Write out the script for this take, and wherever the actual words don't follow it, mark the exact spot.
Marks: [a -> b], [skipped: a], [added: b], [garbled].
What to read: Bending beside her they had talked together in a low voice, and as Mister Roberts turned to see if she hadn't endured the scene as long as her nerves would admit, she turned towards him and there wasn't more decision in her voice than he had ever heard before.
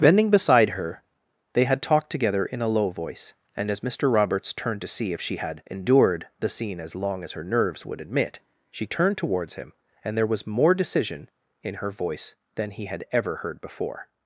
Bending beside her they had talked together in a low voice, and as Mister Roberts turned to see if she [hadn't -> had] endured the scene as long as her nerves would admit, she turned towards him and there [wasn't -> was] more decision in her voice than he had ever heard before.